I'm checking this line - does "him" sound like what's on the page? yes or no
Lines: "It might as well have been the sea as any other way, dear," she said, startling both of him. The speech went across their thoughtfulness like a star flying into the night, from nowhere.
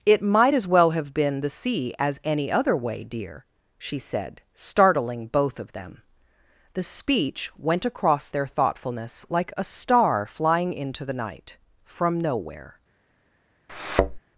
no